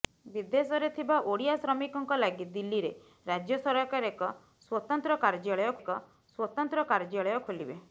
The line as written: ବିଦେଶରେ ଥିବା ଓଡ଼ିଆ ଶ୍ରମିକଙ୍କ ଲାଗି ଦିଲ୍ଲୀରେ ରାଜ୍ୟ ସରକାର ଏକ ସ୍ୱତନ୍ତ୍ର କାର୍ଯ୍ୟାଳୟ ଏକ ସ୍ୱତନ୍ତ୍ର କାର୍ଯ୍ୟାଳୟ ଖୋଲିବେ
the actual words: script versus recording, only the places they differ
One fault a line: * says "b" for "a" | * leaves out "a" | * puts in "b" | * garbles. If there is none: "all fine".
all fine